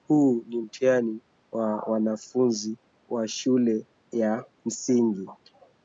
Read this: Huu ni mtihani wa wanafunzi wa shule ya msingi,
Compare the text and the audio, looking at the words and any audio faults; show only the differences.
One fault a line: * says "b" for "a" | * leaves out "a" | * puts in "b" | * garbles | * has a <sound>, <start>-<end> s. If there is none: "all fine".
all fine